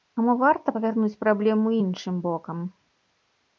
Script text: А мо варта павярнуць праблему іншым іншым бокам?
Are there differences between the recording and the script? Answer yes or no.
yes